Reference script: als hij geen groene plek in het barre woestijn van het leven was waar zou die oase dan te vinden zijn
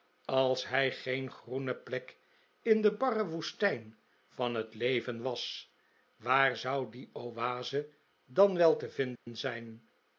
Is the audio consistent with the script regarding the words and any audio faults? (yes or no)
no